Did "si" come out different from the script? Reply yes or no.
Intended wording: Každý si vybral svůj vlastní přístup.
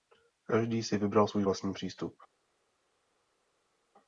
no